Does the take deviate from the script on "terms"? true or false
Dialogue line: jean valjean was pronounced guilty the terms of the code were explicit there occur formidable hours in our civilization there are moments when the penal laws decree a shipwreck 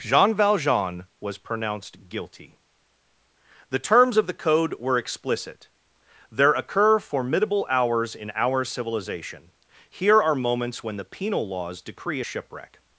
false